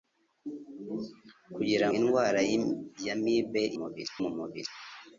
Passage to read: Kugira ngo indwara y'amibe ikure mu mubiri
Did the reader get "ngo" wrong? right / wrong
wrong